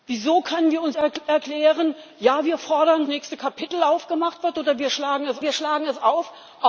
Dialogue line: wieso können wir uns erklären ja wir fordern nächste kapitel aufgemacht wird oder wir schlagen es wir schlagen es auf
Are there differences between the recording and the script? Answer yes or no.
no